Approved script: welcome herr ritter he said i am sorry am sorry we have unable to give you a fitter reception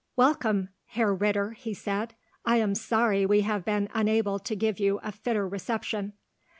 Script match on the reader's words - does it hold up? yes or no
no